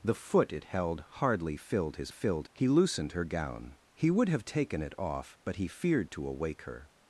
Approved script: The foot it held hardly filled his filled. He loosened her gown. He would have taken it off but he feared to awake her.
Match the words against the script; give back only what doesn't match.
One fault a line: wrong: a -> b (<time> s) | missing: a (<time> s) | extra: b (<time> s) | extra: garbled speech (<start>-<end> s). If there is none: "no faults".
no faults